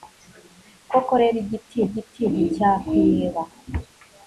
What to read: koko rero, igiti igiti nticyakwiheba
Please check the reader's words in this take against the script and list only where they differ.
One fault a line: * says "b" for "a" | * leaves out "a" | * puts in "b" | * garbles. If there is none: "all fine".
all fine